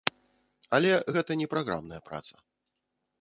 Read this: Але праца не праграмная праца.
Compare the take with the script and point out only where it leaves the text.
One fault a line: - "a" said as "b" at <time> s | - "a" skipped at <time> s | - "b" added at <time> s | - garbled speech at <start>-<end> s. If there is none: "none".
- "праца" said as "гэта" at 1.2 s